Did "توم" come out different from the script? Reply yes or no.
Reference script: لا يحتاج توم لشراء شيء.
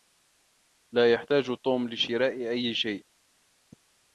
no